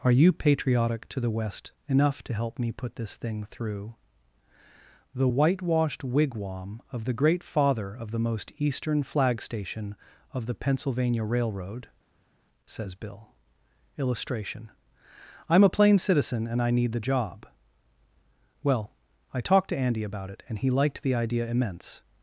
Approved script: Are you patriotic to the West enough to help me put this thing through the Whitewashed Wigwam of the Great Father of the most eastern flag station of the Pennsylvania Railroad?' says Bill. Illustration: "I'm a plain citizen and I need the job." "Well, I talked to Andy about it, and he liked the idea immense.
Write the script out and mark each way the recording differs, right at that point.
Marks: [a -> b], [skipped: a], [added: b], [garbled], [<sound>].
Are you patriotic to the West enough to help me put this thing through the Whitewashed Wigwam of the Great Father of the most eastern flag station of the Pennsylvania Railroad?' says Bill. Illustration: "I'm a plain citizen and I need the job." "Well, I talked to Andy about it, and he liked the idea immense.